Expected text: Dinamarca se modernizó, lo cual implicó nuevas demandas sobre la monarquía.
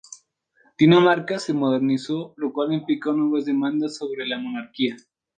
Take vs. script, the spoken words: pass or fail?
pass